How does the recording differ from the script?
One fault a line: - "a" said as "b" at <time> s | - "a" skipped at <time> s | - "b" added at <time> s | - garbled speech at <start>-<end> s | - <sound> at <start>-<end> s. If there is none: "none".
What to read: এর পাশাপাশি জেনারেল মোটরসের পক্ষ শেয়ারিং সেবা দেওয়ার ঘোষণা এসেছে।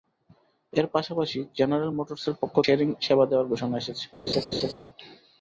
- laugh at 4.3-4.7 s